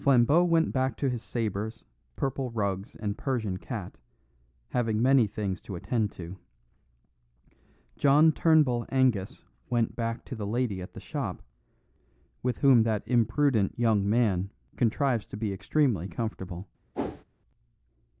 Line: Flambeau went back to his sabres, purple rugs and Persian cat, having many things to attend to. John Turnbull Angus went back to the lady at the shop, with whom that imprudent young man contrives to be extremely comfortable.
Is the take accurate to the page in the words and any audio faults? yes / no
no